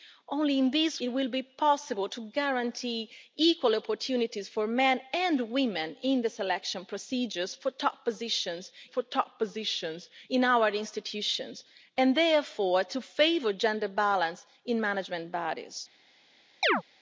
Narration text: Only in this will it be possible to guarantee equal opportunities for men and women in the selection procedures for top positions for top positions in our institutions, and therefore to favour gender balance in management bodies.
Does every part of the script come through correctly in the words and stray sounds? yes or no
no